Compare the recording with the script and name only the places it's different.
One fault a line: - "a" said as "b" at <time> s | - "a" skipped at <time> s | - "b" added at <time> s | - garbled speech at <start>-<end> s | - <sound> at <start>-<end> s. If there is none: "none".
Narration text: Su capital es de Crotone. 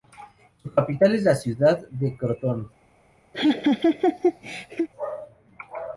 - "la ciudad" added at 1.2 s
- laugh at 3.3-4.9 s